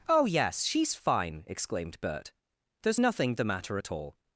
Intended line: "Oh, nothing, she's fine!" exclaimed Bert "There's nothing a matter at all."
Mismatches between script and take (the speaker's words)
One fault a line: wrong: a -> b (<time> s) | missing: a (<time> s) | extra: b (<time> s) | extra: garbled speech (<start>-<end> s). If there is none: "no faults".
wrong: nothing -> yes (0.2 s)
wrong: a -> the (3.3 s)